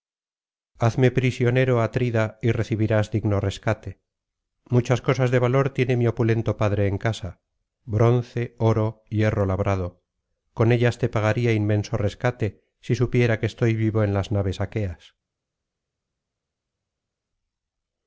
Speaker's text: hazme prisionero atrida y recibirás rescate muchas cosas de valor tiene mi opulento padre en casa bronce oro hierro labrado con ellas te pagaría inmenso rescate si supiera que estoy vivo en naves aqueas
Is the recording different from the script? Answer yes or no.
yes